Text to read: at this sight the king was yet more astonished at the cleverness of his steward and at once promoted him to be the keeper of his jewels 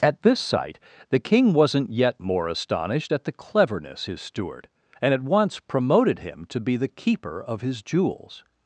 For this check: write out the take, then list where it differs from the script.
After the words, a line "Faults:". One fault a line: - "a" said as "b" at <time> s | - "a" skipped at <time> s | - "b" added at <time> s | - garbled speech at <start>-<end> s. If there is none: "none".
at this sight the king wasn't yet more astonished at the cleverness his steward and at once promoted him to be the keeper of his jewels
Faults:
- "was" said as "wasn't" at 1.5 s
- "of" skipped at 4.0 s